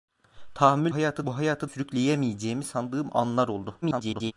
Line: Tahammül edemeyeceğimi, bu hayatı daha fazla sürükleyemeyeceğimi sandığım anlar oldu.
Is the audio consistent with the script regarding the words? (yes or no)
no